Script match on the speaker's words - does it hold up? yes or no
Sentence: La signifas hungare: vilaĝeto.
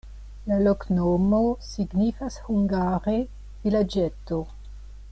no